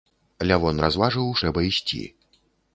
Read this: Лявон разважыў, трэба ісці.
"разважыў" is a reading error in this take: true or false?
false